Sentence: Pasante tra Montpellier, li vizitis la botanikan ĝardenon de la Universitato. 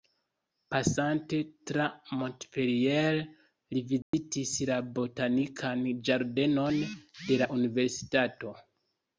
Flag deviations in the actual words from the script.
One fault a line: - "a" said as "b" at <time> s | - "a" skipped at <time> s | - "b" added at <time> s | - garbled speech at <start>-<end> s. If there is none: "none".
none